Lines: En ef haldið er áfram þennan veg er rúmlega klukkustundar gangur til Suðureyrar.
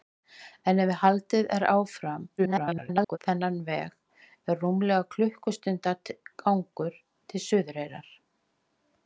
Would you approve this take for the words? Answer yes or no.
no